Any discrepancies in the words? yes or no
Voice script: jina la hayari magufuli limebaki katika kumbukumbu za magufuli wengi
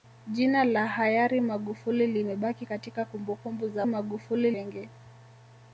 no